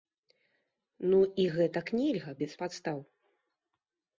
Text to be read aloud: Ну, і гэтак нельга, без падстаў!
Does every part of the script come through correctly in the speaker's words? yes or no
yes